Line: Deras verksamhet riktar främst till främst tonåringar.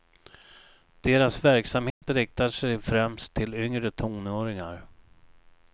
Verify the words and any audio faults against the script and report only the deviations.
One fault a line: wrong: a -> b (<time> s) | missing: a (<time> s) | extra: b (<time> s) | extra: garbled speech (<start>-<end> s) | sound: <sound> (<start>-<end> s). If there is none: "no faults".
sound: dropout (1.9-2.0 s)
extra: sig (2.5 s)
wrong: främst -> yngre (3.5 s)